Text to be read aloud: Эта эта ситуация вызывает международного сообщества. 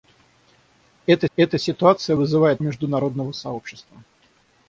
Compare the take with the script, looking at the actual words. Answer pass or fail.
pass